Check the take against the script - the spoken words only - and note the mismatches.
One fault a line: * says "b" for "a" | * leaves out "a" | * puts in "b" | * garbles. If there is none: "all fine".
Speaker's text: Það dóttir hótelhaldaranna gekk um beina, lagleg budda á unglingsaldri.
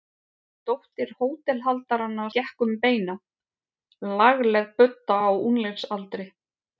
all fine